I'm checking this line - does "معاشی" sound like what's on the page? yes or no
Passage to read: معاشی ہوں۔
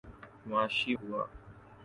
yes